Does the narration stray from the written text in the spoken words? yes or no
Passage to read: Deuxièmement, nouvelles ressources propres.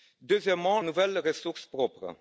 no